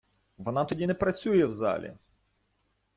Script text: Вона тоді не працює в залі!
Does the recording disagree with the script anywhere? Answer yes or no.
no